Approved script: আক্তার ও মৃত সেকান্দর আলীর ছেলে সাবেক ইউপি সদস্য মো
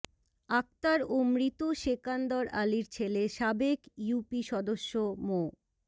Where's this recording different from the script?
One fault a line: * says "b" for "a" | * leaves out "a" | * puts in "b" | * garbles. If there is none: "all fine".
all fine